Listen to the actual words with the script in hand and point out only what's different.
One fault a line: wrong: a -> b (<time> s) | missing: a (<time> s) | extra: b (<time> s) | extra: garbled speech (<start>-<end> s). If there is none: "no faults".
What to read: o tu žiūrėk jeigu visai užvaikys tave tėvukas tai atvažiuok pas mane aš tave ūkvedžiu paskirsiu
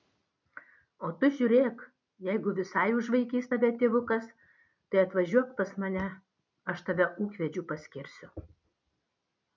no faults